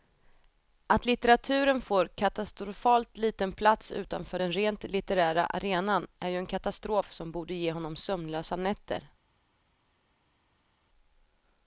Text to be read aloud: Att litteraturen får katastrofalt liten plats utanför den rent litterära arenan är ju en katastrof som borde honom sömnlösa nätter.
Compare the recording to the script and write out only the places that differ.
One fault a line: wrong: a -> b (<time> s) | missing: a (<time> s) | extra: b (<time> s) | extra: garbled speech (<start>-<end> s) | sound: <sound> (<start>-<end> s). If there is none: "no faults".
extra: ge (7.5 s)